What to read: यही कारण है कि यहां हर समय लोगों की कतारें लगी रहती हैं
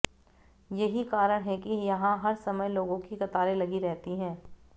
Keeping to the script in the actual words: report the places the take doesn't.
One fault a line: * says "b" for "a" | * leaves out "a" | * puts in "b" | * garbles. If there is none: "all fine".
all fine